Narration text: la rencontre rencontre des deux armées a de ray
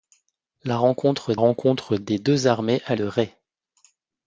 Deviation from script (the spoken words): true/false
false